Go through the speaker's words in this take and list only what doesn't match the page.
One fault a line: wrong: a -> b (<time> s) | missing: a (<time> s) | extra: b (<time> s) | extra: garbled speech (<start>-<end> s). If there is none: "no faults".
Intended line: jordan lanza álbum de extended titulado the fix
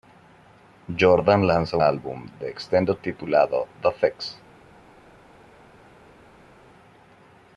no faults